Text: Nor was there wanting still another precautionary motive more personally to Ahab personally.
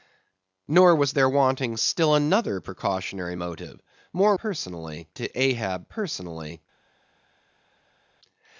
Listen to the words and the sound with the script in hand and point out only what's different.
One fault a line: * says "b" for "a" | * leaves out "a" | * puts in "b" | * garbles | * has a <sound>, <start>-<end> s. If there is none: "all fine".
all fine